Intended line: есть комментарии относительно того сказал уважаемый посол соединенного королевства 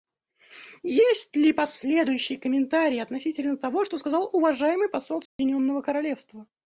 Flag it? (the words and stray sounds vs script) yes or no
yes